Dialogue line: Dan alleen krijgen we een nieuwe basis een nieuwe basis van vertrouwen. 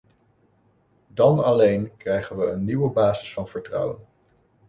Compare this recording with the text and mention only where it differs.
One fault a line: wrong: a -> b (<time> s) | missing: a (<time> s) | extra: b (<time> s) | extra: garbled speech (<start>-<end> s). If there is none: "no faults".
missing: een nieuwe basis (3.4 s)